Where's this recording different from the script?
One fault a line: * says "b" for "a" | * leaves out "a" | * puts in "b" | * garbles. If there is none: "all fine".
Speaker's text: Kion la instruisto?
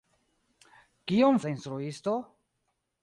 all fine